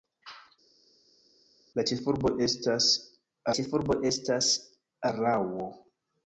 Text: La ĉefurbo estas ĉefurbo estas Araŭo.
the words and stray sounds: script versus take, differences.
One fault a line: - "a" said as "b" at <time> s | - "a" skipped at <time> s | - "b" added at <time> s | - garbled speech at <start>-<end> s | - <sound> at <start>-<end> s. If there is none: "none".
none